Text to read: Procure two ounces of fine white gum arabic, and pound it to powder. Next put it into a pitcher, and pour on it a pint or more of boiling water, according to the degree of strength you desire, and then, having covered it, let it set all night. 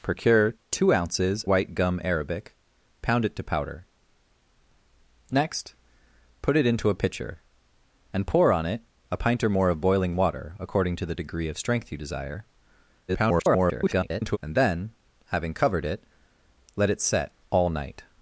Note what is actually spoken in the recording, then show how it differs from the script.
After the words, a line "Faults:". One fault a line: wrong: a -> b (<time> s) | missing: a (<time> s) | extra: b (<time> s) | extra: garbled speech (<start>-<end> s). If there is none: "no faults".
Procure two ounces white gum arabic, pound it to powder. Next put it into a pitcher, and pour on it a pint or more of boiling water, according to the degree of strength you desire, [garbled] and then, having covered it, let it set all night.
Faults:
missing: of fine (1.4 s)
missing: and (2.6 s)
extra: garbled speech (13.1-14.4 s)